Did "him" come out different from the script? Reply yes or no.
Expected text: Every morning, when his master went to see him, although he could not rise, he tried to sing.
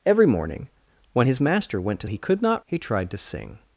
yes